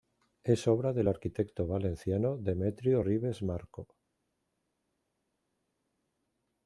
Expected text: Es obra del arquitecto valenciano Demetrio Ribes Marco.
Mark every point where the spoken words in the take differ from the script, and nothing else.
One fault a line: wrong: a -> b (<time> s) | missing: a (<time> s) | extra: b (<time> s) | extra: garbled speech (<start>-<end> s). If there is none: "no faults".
no faults